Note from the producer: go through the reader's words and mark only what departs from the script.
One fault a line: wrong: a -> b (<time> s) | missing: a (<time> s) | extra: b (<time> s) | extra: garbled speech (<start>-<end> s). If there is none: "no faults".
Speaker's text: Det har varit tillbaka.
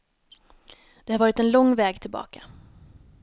extra: en lång väg (1.4 s)